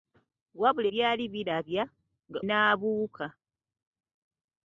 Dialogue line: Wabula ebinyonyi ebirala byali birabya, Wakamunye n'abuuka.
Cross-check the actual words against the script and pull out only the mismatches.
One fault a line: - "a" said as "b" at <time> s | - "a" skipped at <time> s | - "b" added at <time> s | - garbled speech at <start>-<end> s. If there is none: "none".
- "ebinyonyi ebirala" skipped at 0.9 s
- "Wakamunye" skipped at 1.8 s